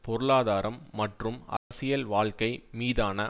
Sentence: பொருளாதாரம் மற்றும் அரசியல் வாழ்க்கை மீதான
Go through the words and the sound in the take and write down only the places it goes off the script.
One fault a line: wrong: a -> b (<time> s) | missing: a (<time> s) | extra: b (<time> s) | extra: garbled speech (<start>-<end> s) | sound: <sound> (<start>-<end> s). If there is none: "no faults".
sound: dropout (1.6-1.7 s)